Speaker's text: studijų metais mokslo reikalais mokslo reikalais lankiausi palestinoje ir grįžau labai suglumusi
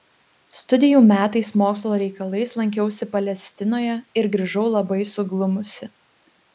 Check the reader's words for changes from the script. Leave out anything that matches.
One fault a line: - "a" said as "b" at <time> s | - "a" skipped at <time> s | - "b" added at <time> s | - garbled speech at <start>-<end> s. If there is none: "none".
- "mokslo reikalais" skipped at 2.5 s